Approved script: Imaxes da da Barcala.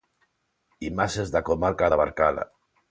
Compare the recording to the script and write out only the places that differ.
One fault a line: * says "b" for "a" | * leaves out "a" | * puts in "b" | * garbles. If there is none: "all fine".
* puts in "comarca"